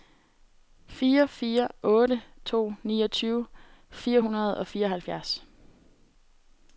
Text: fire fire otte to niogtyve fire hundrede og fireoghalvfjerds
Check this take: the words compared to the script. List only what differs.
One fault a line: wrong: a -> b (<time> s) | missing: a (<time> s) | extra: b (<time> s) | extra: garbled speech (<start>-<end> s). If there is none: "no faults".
no faults